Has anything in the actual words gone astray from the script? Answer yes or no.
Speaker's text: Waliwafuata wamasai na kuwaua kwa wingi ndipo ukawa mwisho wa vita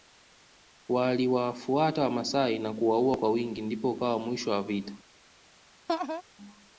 no